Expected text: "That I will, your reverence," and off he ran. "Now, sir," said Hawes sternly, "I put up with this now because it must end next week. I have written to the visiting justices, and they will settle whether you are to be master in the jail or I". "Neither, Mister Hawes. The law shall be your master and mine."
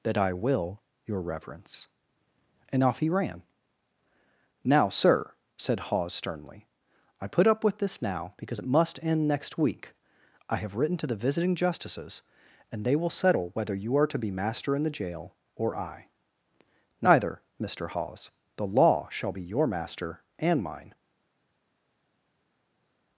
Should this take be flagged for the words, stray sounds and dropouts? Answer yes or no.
no